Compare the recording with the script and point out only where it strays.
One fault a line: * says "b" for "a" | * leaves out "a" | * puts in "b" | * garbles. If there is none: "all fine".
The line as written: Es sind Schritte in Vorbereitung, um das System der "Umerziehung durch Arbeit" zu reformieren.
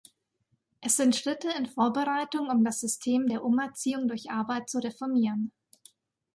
all fine